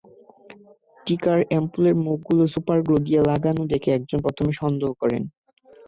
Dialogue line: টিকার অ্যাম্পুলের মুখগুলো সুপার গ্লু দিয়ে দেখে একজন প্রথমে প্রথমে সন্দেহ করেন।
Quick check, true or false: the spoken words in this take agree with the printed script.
false